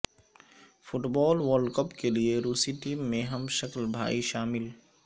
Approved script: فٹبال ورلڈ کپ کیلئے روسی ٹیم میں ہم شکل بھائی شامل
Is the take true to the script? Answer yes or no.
yes